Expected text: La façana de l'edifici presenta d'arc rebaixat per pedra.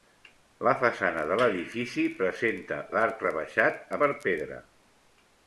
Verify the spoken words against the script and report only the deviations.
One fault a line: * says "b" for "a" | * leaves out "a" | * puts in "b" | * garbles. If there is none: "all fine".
all fine